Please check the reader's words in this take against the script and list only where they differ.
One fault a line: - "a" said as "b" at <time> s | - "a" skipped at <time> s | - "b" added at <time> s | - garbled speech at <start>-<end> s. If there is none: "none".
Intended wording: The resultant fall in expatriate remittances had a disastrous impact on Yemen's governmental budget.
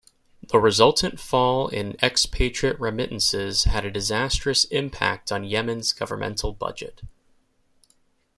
none